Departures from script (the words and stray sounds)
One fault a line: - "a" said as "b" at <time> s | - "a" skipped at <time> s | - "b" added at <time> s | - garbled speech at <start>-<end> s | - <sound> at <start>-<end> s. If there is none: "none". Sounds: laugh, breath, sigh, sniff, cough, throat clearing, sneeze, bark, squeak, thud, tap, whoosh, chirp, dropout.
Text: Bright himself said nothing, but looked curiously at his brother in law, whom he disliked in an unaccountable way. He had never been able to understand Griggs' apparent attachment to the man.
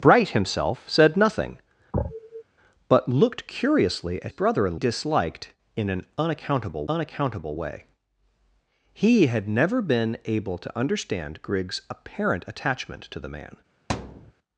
- sniff at 1.9-2.4 s
- "his" skipped at 4.3 s
- "law whom he" skipped at 4.8 s
- "unaccountable" added at 6.9 s
- thud at 13.9-14.3 s